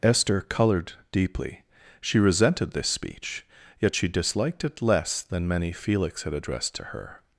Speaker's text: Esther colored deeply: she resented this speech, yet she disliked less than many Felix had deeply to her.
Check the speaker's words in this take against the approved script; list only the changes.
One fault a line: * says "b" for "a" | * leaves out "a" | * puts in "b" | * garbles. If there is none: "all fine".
* puts in "it"
* says "addressed" for "deeply"